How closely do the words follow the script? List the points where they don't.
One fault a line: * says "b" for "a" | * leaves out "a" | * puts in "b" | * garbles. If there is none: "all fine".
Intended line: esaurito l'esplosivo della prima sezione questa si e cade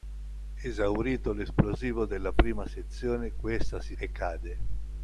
all fine